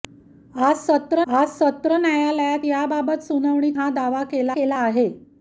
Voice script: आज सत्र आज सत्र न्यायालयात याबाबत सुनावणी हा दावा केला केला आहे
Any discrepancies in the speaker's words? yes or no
no